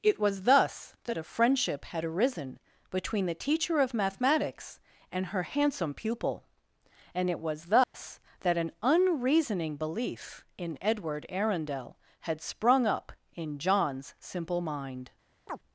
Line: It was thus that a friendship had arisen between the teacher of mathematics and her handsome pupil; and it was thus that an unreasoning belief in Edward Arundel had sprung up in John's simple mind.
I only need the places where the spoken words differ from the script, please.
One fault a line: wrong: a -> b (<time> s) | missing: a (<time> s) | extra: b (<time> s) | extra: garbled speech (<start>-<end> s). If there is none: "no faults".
no faults